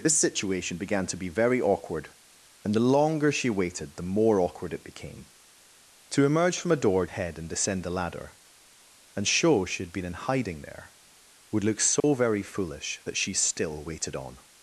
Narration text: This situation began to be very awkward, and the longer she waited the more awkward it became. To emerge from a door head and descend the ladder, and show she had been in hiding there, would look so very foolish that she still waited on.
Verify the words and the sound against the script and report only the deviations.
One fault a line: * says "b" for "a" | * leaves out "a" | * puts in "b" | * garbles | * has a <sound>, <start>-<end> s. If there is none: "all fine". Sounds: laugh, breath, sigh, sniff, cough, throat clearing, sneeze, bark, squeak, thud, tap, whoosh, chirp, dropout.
* has a dropout, 12.0-12.0 s